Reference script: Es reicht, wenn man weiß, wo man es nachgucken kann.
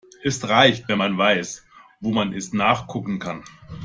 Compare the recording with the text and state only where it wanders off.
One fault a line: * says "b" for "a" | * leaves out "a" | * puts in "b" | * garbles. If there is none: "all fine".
all fine